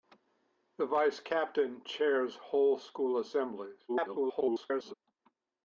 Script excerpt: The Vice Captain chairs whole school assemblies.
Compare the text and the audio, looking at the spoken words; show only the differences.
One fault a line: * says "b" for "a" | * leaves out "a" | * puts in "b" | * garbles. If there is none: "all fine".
* garbles